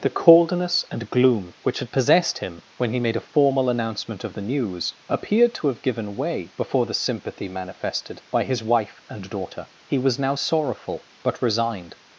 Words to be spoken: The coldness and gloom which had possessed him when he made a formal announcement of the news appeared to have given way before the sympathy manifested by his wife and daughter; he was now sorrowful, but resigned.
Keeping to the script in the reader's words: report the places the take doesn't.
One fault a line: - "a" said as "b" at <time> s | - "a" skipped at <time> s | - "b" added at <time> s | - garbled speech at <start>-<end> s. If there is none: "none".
none